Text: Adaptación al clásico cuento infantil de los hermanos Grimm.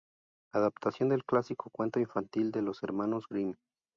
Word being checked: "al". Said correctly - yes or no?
no